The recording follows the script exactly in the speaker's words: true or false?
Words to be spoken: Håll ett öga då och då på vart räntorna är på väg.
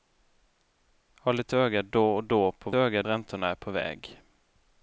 false